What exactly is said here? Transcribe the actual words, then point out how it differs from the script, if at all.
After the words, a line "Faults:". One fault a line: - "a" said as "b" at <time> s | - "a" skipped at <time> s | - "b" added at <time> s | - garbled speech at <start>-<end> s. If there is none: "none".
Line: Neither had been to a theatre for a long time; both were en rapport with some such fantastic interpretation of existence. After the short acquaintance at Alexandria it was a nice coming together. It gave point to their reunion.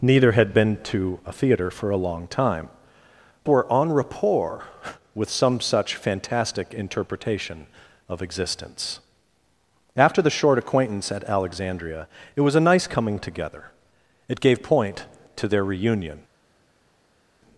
Neither had been to a theatre for a long time; were en rapport with some such fantastic interpretation of existence. After the short acquaintance at Alexandria it was a nice coming together. It gave point to their reunion.
Faults:
- "both" skipped at 2.7 s